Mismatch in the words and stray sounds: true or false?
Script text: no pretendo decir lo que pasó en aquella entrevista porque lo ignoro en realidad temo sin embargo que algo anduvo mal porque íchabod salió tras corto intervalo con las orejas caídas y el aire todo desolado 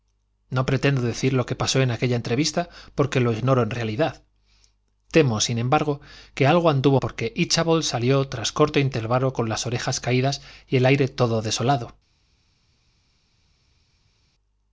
true